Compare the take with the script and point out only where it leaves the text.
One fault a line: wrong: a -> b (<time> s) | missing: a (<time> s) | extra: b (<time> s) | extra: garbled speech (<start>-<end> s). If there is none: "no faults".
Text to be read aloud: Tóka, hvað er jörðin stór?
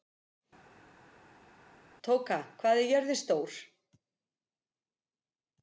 no faults